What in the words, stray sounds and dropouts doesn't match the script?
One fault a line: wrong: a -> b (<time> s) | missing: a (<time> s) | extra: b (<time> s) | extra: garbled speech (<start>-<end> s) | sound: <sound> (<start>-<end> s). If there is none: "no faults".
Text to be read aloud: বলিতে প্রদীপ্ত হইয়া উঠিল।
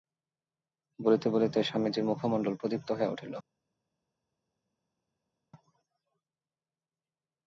extra: বলিতে স্বামীজীর মুখমণ্ডল (1.3 s)